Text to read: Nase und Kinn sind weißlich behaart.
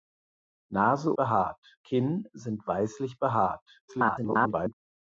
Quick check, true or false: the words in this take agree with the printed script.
false